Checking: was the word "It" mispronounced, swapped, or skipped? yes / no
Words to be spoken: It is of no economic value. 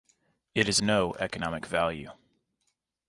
no